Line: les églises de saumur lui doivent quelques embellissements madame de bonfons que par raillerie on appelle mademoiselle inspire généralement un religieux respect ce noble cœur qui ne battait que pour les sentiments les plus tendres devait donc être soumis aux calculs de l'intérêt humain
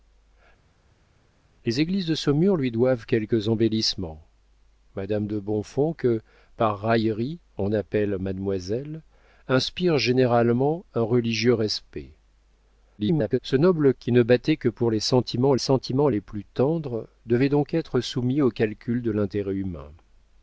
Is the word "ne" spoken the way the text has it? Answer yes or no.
yes